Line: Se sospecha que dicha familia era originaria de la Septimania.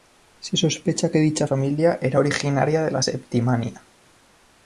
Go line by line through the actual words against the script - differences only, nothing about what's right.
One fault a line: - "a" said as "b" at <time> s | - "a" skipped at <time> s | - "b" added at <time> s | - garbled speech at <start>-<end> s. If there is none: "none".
none